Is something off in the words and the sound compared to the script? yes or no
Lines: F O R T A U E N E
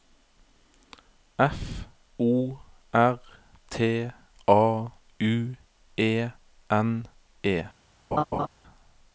yes